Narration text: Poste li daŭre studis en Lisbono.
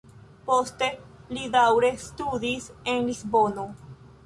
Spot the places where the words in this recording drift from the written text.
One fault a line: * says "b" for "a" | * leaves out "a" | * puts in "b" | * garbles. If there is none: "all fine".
all fine